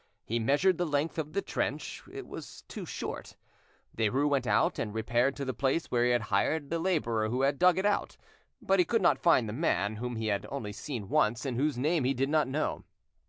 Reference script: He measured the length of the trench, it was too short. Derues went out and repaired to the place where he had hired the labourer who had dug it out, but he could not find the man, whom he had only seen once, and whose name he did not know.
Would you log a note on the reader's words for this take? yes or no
no